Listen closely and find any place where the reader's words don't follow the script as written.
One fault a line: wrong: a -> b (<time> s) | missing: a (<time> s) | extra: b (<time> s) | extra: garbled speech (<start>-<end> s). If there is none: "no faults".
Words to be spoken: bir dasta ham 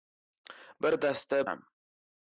no faults